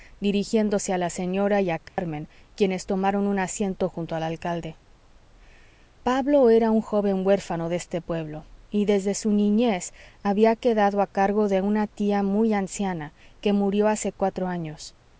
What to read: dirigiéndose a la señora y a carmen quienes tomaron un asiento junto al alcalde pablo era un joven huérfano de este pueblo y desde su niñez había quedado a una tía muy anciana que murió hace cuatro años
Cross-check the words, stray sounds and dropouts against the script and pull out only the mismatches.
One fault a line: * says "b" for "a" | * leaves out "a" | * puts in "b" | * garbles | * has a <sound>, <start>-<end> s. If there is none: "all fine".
* has a dropout, 1.9-2.0 s
* puts in "cargo de"